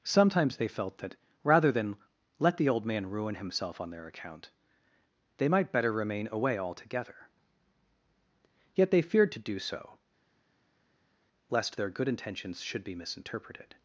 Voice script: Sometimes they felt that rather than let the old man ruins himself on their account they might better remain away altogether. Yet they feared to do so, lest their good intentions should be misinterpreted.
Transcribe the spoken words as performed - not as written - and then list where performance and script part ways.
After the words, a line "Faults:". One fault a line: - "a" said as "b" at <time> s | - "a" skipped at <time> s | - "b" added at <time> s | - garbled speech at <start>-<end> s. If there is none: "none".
Sometimes they felt that rather than let the old man ruin himself on their account they might better remain away altogether. Yet they feared to do so, lest their good intentions should be misinterpreted.
Faults:
- "ruins" said as "ruin" at 3.1 s